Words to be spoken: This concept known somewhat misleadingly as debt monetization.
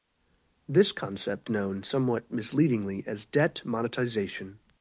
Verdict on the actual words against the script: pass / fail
pass